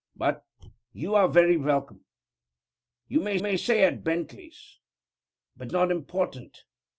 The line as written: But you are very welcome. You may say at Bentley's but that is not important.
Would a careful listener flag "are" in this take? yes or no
no